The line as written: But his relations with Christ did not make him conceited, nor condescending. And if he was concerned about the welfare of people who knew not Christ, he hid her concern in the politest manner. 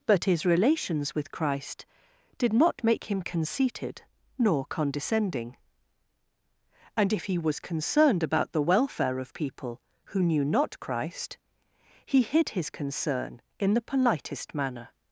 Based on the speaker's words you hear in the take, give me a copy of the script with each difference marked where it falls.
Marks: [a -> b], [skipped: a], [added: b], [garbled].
But his relations with Christ did not make him conceited, nor condescending. And if he was concerned about the welfare of people who knew not Christ, he hid [her -> his] concern in the politest manner.